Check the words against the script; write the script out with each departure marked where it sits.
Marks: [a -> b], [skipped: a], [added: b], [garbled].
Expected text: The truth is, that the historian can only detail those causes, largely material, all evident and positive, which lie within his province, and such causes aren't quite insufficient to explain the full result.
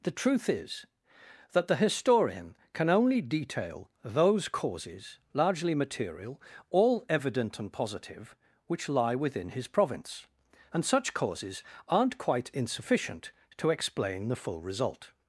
The truth is, that the historian can only detail those causes, largely material, all evident and positive, which lie within his province, and such causes aren't quite insufficient to explain the full result.